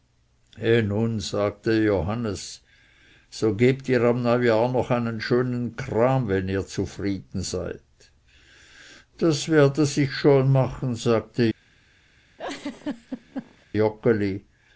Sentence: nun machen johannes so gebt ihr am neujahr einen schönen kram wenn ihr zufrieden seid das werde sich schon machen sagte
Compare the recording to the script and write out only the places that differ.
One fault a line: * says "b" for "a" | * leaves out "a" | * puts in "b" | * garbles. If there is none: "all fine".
* says "sagte" for "machen"
* puts in "noch"